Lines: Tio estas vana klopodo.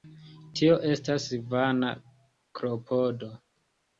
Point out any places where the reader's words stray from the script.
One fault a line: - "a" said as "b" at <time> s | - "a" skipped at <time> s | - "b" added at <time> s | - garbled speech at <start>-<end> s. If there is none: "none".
none